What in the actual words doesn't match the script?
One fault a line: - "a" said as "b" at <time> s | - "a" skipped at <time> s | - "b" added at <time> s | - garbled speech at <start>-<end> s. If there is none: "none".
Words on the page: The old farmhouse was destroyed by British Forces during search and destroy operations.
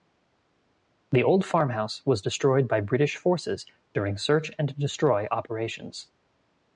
none